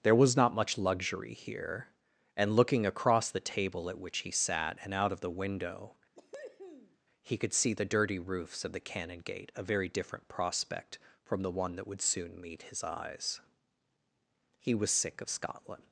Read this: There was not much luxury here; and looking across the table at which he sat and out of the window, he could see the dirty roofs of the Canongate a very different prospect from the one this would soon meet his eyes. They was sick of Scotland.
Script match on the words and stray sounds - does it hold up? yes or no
no